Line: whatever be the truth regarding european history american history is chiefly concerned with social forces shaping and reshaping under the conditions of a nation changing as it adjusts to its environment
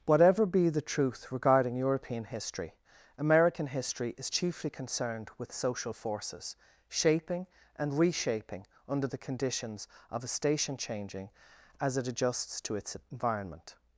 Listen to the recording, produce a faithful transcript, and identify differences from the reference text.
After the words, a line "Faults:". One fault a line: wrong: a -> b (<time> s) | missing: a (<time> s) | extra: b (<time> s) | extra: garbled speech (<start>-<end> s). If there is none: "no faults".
whatever be the truth regarding european history american history is chiefly concerned with social forces shaping and reshaping under the conditions of a station changing as it adjusts to its environment
Faults:
wrong: nation -> station (10.3 s)